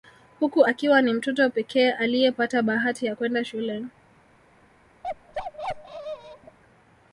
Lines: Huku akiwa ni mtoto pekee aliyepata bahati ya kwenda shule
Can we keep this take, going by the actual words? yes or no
yes